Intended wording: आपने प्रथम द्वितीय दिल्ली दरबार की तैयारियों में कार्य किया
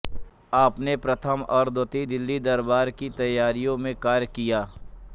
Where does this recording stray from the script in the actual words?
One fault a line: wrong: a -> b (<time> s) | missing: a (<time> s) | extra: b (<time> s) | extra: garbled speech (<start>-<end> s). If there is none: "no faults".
extra: और (1.5 s)